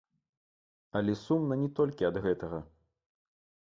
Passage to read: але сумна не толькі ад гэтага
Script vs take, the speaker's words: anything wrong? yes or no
no